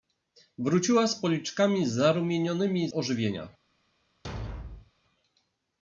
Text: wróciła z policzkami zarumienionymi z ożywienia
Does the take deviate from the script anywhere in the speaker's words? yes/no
yes